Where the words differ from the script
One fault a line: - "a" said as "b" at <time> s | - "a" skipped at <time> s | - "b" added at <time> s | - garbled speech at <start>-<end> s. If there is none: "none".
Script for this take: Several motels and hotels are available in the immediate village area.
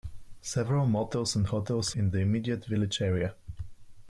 - "are available" skipped at 1.9 s